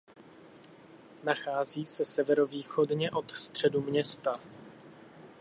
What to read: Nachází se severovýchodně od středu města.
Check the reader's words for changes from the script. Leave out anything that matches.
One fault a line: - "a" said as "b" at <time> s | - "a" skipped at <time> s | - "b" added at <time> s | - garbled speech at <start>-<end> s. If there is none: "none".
none